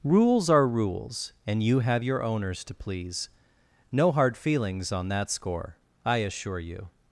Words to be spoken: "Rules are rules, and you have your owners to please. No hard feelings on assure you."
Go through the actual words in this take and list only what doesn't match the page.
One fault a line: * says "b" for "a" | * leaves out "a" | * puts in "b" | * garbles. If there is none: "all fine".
* puts in "that score I"